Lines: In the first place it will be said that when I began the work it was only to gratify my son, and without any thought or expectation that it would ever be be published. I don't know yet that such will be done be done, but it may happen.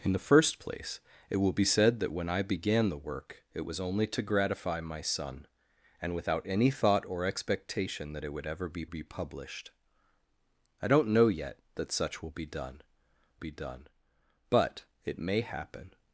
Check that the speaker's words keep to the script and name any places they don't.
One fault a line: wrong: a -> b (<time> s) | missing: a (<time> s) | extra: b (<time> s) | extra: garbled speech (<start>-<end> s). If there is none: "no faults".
no faults